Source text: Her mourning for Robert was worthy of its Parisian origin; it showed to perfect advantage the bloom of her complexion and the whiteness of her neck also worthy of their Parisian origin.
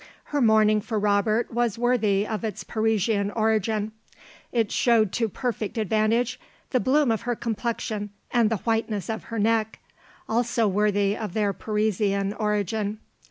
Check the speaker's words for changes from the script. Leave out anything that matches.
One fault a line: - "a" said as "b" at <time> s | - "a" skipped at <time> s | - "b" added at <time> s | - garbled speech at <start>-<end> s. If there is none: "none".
none